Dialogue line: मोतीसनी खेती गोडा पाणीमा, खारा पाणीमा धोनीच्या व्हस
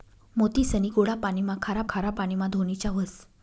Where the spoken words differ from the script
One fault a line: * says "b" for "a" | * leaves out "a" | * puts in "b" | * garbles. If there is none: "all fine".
* leaves out "खेती"
* puts in "खारा"